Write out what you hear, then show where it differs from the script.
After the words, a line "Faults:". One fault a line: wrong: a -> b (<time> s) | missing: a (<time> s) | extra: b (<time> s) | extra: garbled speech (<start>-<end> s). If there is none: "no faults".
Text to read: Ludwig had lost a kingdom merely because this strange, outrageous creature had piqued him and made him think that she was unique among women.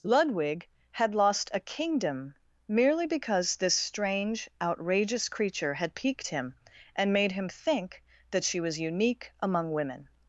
Ludwig had lost a kingdom merely because this strange, outrageous creature had piqued him and made him think that she was unique among women.
Faults:
no faults